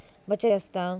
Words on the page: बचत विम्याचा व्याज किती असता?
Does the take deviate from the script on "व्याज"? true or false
true